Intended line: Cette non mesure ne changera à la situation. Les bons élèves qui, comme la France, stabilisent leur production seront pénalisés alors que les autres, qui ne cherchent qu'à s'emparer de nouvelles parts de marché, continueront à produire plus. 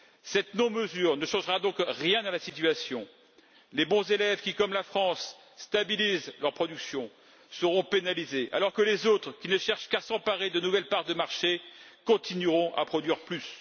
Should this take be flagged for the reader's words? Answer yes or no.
yes